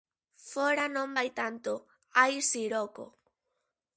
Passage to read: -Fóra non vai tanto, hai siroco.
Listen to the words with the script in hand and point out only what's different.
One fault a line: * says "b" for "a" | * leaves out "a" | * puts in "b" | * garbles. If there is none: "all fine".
all fine